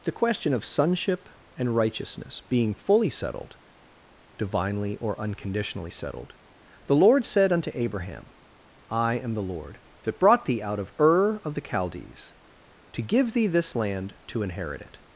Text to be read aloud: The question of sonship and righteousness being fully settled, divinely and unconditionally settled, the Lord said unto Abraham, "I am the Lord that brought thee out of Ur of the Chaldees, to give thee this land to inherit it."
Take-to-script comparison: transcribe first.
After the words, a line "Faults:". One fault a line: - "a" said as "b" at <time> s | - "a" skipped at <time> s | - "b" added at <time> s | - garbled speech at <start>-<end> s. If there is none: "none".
The question of sonship and righteousness being fully settled, divinely or unconditionally settled, the Lord said unto Abraham, "I am the Lord that brought thee out of Ur of the Chaldees, to give thee this land to inherit it."
Faults:
- "and" said as "or" at 5.0 s